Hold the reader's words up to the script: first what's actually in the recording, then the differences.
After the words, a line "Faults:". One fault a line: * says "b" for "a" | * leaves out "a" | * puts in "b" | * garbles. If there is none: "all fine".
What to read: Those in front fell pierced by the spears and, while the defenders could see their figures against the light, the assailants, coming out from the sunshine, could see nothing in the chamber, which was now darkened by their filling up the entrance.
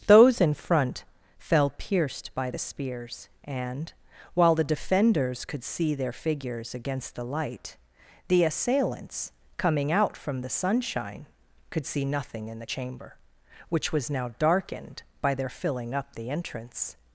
Those in front fell pierced by the spears and, while the defenders could see their figures against the light, the assailants, coming out from the sunshine, could see nothing in the chamber, which was now darkened by their filling up the entrance.
Faults:
all fine